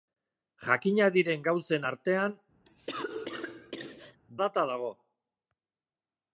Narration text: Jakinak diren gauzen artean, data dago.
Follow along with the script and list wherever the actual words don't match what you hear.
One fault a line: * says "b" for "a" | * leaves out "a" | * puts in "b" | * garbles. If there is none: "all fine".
all fine